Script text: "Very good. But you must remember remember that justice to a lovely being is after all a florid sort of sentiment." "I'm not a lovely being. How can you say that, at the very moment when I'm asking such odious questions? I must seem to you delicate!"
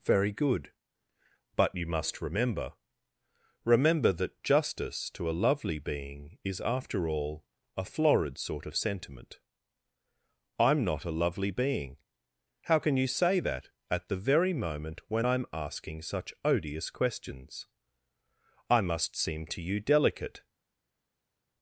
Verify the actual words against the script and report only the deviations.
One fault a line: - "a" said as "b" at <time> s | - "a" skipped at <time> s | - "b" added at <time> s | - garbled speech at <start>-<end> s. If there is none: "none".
none